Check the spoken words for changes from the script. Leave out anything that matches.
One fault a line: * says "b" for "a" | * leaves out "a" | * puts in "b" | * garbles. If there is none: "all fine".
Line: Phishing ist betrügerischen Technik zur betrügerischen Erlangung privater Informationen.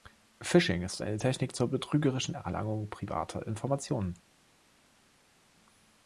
* says "eine" for "betrügerischen"